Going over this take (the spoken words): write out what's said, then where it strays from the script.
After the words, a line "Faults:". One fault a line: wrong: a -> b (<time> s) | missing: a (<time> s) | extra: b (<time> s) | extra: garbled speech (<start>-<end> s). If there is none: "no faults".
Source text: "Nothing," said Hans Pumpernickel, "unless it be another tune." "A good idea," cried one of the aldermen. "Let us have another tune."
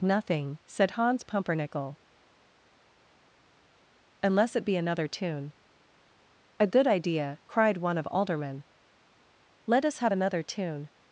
"Nothing," said Hans Pumpernickel, "unless it be another tune." "A good idea," cried one of aldermen. "Let us have another tune."
Faults:
missing: the (8.1 s)